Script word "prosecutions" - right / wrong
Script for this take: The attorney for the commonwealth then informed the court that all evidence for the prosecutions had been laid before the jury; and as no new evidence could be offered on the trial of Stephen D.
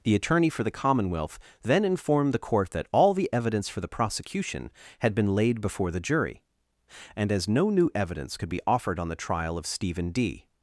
wrong